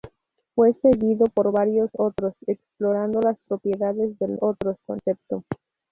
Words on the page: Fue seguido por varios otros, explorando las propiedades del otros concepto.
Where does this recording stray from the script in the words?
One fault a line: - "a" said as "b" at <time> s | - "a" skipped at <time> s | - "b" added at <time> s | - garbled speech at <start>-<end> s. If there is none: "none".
none